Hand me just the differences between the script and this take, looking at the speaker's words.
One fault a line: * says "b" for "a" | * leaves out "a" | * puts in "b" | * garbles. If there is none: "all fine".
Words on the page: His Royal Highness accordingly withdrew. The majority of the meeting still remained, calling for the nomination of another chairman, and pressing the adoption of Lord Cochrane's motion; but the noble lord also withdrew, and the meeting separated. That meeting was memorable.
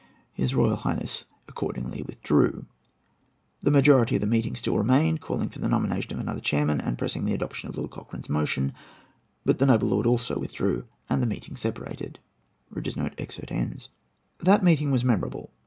all fine